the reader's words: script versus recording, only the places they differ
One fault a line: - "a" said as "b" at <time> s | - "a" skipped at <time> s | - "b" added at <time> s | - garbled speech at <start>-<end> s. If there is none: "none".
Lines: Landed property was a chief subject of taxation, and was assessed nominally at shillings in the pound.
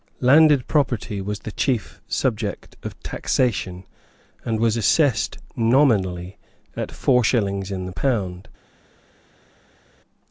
- "a" said as "the" at 1.4 s
- "four" added at 6.9 s